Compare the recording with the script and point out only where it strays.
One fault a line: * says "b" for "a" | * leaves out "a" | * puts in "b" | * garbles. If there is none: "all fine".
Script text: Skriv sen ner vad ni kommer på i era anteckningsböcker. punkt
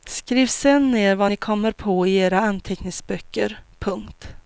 all fine